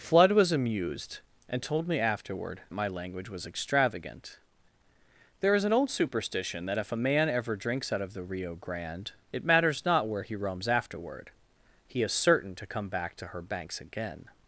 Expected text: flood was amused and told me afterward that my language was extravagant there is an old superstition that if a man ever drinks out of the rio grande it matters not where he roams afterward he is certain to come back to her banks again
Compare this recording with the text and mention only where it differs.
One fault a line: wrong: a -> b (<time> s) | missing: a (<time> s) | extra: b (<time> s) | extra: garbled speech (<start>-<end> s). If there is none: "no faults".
missing: that (2.6 s)